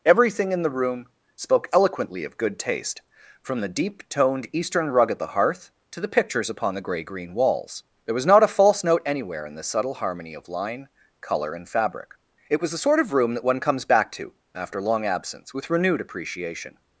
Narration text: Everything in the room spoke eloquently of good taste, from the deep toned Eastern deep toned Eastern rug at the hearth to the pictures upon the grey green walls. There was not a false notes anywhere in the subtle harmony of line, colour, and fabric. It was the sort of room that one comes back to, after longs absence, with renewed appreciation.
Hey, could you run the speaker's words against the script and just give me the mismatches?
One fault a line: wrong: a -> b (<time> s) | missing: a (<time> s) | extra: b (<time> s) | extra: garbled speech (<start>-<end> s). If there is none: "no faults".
missing: deep toned Eastern (4.9 s)
wrong: notes -> note (8.8 s)
wrong: longs -> long (14.8 s)